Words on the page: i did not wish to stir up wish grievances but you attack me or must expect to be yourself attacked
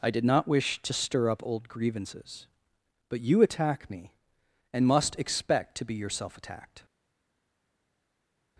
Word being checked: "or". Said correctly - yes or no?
no